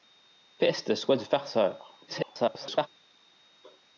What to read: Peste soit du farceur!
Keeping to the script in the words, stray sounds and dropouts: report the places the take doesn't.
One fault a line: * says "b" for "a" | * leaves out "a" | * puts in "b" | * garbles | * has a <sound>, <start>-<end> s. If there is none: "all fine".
* garbles